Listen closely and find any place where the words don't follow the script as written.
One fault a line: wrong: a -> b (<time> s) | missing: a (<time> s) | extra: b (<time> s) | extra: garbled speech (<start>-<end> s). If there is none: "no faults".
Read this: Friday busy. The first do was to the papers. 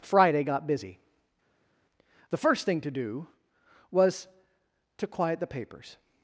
extra: got (0.4 s)
extra: thing to (2.6 s)
extra: quiet (5.1 s)